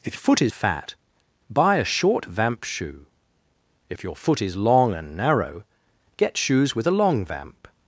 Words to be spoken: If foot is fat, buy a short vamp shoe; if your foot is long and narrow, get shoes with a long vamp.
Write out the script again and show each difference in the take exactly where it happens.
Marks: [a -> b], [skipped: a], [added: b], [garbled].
If foot is fat, buy a short vamp shoe; if your foot is long and narrow, get shoes with a long vamp.